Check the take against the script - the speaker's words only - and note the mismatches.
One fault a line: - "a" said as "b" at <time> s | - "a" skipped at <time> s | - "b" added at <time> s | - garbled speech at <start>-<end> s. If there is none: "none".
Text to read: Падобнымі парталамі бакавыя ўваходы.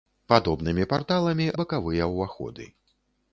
none